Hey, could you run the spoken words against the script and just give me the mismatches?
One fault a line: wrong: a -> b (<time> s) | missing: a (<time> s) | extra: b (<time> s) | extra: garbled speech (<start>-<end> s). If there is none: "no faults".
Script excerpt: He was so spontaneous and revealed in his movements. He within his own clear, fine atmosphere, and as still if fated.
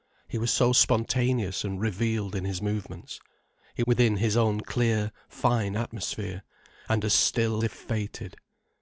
no faults